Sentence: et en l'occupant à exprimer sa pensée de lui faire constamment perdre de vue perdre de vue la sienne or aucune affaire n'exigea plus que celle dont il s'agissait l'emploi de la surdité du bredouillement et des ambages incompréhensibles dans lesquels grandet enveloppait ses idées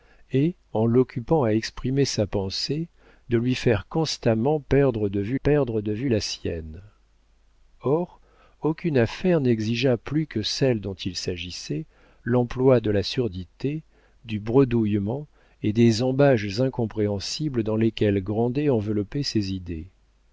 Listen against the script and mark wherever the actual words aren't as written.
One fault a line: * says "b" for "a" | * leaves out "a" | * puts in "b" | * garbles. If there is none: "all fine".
all fine